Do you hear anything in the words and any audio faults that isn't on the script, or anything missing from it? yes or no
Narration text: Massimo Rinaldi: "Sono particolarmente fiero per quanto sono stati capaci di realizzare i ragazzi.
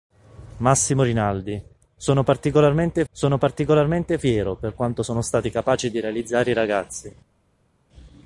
yes